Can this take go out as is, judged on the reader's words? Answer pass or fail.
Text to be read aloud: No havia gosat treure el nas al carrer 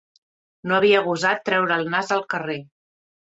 pass